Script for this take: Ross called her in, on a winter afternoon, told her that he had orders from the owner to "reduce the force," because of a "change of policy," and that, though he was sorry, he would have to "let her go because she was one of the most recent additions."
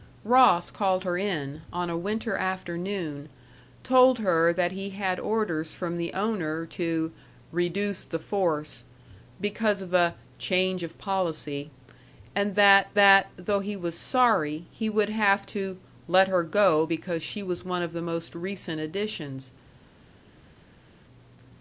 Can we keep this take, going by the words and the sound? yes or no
no